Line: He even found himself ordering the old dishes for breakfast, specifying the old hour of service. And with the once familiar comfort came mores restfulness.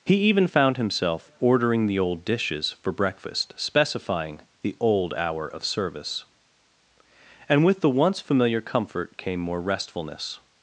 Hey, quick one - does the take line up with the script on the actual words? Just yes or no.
no